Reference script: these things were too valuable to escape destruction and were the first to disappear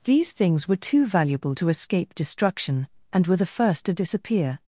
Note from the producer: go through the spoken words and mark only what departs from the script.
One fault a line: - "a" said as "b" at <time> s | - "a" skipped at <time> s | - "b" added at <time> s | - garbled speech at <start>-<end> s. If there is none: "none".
none